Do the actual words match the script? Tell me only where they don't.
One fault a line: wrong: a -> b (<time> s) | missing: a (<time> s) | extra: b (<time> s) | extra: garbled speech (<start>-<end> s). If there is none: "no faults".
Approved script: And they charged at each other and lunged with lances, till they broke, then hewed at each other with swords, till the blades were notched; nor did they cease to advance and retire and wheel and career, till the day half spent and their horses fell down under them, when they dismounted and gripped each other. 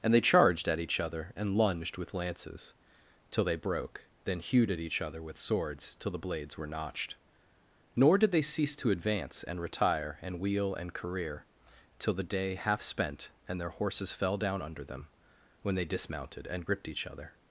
no faults